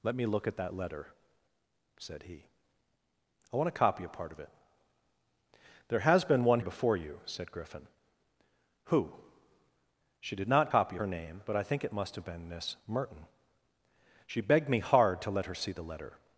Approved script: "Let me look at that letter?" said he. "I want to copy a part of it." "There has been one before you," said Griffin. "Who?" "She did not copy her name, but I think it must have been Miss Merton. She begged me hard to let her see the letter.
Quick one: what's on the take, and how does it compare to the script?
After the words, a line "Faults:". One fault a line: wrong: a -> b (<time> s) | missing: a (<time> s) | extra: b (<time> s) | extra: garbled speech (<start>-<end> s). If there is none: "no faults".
"Let me look at that letter?" said he. "I want to copy a part of it." "There has been one before you," said Griffin. "Who?" "She did not copy her name, but I think it must have been Miss Merton. She begged me hard to let her see the letter.
Faults:
no faults